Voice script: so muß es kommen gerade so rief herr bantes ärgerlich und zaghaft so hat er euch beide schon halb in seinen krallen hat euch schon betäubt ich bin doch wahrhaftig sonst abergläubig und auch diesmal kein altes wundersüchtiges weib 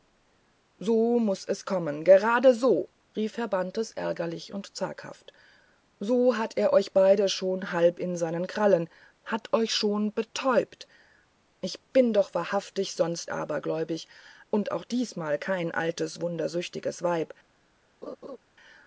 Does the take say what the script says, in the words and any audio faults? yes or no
no